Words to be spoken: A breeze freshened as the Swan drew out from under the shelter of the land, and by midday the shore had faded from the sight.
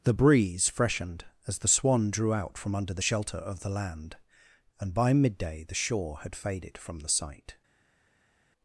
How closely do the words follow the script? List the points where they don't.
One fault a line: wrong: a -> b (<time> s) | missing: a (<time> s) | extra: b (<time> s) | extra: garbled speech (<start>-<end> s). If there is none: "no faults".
wrong: A -> The (0.0 s)